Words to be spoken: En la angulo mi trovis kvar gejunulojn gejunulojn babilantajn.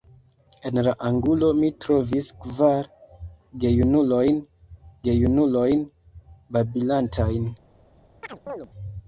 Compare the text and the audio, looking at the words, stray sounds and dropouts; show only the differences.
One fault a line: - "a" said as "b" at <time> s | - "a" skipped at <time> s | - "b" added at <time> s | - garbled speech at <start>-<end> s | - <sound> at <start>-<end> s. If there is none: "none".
- chirp at 8.2-8.7 s